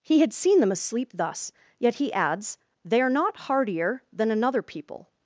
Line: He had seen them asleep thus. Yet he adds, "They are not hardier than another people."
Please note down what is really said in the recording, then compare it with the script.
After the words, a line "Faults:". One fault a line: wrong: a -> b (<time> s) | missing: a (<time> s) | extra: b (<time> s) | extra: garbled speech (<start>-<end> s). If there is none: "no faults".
He had seen them asleep thus. Yet he adds, "They are not hardier than another people."
Faults:
no faults